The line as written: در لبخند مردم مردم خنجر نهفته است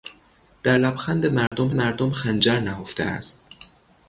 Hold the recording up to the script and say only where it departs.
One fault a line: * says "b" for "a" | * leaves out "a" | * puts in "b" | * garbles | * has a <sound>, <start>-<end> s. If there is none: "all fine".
* has a dropout, 1.5-1.5 s